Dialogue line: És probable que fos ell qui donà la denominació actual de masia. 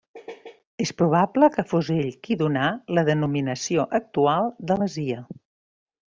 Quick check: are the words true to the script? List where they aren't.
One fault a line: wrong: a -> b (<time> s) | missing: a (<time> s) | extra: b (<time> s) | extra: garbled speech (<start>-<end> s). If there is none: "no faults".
no faults